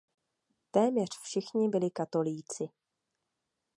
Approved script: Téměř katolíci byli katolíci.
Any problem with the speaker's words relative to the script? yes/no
yes